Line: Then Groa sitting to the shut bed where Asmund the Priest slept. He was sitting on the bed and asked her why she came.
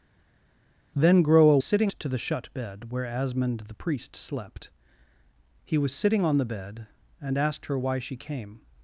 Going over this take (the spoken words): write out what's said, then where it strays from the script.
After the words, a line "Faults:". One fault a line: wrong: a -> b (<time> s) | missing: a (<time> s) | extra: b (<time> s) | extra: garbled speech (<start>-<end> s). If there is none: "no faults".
Then Groa sitting to the shut bed where Asmund the Priest slept. He was sitting on the bed and asked her why she came.
Faults:
no faults